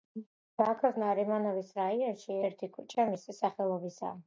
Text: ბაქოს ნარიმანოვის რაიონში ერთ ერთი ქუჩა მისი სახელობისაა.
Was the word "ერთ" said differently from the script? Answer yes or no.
yes